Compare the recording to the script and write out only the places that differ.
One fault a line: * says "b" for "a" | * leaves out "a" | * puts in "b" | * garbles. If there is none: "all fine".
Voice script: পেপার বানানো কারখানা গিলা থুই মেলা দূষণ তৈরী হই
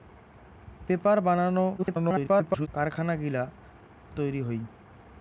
* garbles
* leaves out "থুই মেলা দূষণ"